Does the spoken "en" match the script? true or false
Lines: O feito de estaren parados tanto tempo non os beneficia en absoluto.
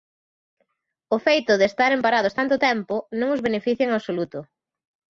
true